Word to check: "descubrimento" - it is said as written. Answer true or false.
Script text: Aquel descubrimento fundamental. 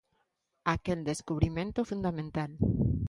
true